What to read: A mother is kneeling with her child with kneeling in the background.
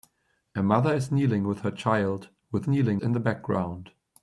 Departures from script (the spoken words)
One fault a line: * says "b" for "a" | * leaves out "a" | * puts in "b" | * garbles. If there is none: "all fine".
all fine